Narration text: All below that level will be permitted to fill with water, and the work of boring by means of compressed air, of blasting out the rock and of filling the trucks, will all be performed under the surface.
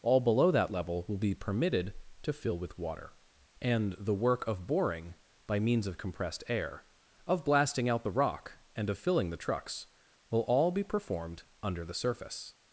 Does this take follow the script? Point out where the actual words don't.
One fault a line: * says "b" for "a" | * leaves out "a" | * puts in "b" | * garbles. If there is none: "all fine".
all fine